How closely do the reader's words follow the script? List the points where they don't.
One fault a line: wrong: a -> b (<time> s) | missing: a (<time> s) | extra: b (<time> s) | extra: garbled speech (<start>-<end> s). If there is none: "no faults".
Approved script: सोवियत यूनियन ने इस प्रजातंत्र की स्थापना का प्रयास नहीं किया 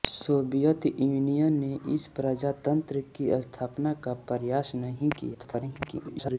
extra: garbled speech (5.3-6.4 s)